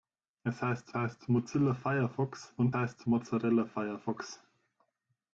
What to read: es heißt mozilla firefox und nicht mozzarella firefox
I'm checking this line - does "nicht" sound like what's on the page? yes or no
no